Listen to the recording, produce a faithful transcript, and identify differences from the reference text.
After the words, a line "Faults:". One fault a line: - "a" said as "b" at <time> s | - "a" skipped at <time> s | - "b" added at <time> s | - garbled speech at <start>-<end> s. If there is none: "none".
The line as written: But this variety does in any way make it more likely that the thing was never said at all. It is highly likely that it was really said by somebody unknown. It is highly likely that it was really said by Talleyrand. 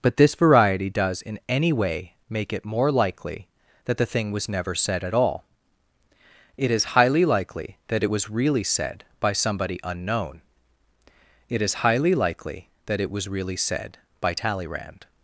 But this variety does in any way make it more likely that the thing was never said at all. It is highly likely that it was really said by somebody unknown. It is highly likely that it was really said by Talleyrand.
Faults:
none